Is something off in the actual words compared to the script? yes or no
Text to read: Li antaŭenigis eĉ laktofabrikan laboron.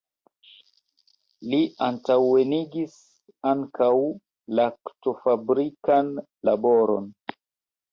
yes